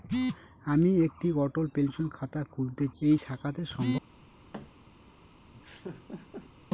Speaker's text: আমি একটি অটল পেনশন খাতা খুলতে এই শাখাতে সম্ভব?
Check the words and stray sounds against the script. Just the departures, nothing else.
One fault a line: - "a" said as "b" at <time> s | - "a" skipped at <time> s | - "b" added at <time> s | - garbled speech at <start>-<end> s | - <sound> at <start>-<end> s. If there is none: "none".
- thud at 4.5-4.7 s
- laugh at 5.5-6.5 s